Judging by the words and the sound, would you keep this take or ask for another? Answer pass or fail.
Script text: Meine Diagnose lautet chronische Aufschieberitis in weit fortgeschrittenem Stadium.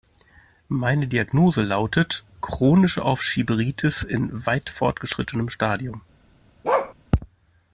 fail